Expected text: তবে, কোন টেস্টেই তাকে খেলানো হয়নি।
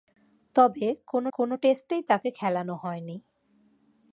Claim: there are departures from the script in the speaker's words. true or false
true